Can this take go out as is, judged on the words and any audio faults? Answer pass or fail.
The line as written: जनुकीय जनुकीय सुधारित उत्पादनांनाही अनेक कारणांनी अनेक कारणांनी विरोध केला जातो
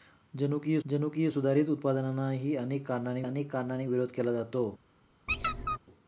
fail